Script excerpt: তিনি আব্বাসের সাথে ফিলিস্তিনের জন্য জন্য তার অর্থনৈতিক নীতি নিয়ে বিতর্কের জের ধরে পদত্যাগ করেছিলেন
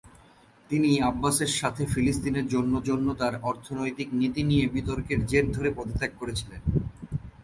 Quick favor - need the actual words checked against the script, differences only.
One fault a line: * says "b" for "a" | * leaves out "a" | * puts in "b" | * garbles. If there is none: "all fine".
all fine